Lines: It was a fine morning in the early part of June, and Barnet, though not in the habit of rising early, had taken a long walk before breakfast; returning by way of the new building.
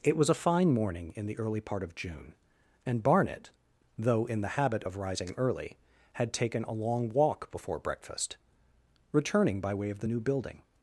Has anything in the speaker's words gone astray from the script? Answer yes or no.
yes